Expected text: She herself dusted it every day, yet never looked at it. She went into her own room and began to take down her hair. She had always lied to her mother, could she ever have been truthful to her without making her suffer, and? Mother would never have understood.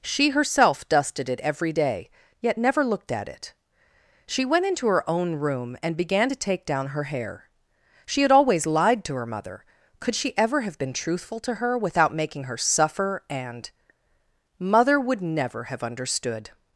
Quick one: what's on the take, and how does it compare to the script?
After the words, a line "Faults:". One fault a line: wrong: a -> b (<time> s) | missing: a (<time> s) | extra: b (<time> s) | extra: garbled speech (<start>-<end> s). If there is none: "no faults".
She herself dusted it every day, yet never looked at it. She went into her own room and began to take down her hair. She had always lied to her mother, could she ever have been truthful to her without making her suffer, and? Mother would never have understood.
Faults:
no faults